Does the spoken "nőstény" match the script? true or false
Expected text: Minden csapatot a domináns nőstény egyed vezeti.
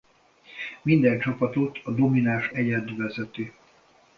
false